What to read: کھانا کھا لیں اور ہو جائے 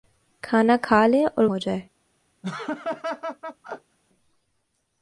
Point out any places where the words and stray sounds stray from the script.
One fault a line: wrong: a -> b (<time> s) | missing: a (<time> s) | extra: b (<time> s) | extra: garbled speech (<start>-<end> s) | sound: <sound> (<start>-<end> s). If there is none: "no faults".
sound: laugh (2.4-4.0 s)